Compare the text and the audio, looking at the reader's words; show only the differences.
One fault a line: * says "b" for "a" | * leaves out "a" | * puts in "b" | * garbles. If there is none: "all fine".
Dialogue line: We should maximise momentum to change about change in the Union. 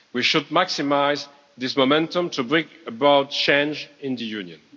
* puts in "this"
* says "bring" for "change"